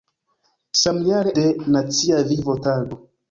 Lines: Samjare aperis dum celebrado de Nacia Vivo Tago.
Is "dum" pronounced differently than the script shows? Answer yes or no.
yes